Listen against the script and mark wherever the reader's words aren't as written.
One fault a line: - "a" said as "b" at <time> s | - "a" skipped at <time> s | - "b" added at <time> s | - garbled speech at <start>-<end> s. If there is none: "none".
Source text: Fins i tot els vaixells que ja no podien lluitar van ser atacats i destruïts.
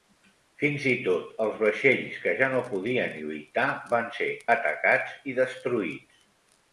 none